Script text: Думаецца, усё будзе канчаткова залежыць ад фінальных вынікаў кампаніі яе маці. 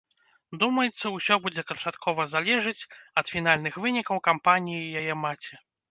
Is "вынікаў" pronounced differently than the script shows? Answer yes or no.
no